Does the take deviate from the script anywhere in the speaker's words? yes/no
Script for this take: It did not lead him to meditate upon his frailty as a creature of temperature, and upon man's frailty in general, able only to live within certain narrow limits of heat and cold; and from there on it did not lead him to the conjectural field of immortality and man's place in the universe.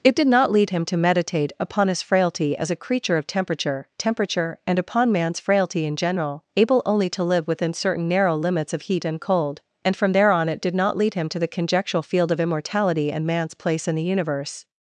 yes